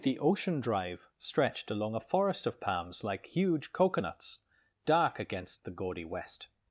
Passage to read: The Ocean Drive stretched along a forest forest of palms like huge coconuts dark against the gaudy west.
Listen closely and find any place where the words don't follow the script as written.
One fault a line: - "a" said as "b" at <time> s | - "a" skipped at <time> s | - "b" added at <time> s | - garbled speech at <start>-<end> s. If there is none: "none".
- "forest" skipped at 2.5 s